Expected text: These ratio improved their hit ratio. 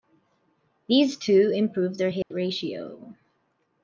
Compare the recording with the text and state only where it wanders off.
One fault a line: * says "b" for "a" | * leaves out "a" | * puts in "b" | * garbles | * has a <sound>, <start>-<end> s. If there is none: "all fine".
* says "two" for "ratio"
* has a dropout, 2.2-2.3 s